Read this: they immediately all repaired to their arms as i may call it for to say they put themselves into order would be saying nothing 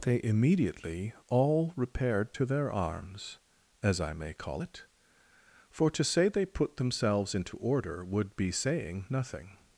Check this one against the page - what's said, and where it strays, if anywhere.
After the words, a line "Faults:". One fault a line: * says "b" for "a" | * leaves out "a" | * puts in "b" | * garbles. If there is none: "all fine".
they immediately all repaired to their arms as i may call it for to say they put themselves into order would be saying nothing
Faults:
all fine